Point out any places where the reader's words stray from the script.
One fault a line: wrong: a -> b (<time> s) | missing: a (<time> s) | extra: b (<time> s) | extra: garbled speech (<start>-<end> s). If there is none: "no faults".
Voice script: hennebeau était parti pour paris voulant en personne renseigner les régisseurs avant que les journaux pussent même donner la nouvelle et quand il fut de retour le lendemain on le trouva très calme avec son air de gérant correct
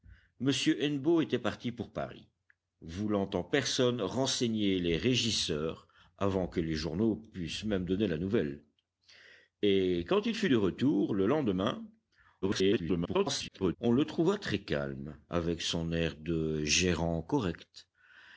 extra: garbled speech (12.4-13.8 s)